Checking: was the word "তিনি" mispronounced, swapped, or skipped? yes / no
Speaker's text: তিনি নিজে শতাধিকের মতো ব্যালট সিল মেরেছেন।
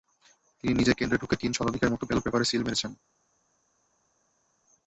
no